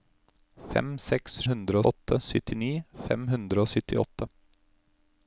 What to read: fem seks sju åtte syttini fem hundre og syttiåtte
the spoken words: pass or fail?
fail